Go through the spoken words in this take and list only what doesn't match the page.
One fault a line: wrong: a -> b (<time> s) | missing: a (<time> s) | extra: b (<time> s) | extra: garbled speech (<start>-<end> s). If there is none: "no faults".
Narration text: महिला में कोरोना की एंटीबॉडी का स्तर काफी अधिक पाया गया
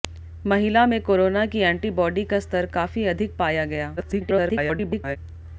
extra: garbled speech (4.0-5.2 s)